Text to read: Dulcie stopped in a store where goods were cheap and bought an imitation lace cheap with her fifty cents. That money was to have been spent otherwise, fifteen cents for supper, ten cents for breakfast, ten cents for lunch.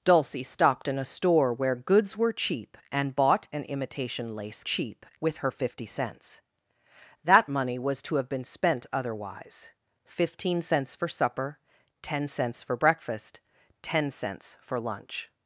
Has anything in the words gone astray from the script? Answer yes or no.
no